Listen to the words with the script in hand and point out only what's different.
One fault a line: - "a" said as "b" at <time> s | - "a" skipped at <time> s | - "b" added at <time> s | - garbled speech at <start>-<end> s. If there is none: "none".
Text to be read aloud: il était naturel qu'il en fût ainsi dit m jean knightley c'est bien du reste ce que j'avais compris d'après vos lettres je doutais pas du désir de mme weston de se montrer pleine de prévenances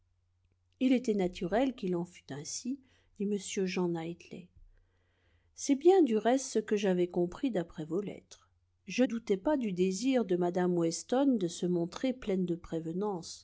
none